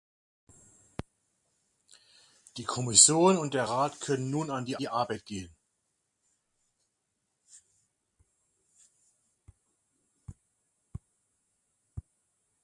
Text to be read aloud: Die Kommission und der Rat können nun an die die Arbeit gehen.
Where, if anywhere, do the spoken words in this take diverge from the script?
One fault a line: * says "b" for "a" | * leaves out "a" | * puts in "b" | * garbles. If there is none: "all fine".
all fine